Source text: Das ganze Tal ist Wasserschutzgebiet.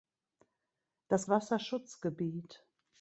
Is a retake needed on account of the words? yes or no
yes